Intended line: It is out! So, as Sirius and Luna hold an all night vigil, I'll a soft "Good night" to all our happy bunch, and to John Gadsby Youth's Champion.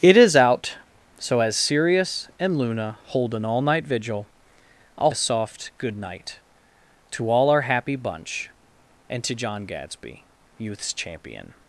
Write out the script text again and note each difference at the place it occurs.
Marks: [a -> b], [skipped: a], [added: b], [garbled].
It is out! So, as Sirius and Luna hold an all night vigil, I'll a soft "Good night" to all our happy bunch, and to John Gadsby Youth's Champion.